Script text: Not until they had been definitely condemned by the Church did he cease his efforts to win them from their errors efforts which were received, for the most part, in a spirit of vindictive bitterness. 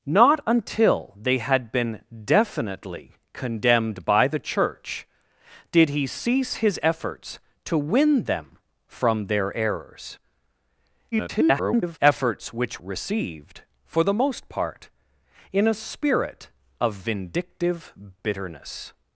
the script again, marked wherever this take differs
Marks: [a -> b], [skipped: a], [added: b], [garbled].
Not until they had been definitely condemned by the Church did he cease his efforts to win them from their errors [garbled] efforts which [skipped: were] received, for the most part, in a spirit of vindictive bitterness.